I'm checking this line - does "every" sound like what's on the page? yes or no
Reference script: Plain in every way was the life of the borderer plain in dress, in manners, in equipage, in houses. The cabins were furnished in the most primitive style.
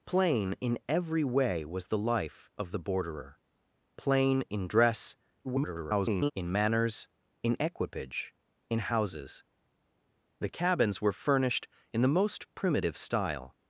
yes